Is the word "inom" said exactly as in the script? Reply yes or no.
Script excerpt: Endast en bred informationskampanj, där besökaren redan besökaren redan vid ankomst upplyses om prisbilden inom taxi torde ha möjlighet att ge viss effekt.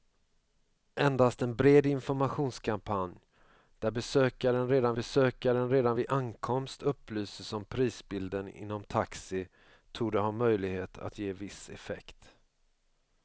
yes